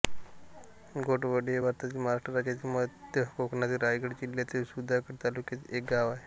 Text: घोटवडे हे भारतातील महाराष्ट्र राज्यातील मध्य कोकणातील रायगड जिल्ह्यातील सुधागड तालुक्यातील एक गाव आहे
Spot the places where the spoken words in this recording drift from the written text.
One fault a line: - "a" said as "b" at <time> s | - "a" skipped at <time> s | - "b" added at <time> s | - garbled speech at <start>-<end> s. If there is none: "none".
none